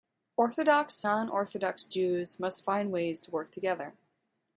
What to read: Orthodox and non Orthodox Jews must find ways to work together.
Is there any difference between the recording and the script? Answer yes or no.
yes